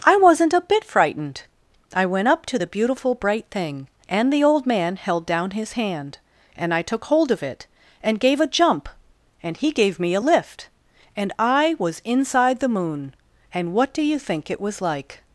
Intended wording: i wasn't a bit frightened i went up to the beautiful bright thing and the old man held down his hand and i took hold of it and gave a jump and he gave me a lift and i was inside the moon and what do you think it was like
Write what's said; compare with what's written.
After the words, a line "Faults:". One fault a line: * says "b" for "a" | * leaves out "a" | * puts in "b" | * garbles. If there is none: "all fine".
i wasn't a bit frightened i went up to the beautiful bright thing and the old man held down his hand and i took hold of it and gave a jump and he gave me a lift and i was inside the moon and what do you think it was like
Faults:
all fine